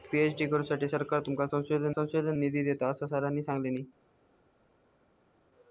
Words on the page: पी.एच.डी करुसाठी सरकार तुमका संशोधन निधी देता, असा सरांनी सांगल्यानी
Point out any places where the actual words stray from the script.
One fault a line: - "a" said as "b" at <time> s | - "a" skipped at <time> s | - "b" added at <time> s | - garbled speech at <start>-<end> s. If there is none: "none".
- "संशोधन" added at 1.9 s